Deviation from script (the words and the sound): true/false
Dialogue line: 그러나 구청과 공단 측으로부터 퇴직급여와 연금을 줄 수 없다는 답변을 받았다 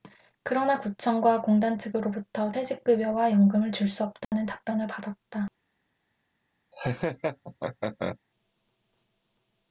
true